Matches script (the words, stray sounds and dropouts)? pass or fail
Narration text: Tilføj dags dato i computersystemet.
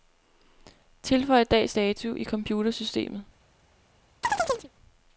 fail